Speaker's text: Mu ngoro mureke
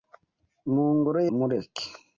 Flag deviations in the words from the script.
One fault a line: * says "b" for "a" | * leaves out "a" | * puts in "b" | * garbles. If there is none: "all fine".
all fine